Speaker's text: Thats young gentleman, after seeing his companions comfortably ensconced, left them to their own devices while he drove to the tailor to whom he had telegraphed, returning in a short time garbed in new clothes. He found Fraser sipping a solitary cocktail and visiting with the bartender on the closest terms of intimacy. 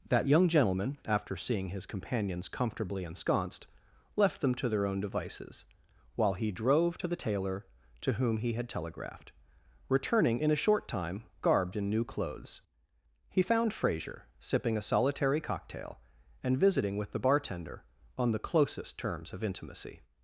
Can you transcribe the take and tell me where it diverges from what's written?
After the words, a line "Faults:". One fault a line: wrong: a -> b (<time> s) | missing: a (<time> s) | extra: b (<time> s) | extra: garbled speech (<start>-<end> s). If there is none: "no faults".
That young gentleman, after seeing his companions comfortably ensconced, left them to their own devices while he drove to the tailor to whom he had telegraphed, returning in a short time garbed in new clothes. He found Fraser sipping a solitary cocktail and visiting with the bartender on the closest terms of intimacy.
Faults:
wrong: Thats -> That (0.1 s)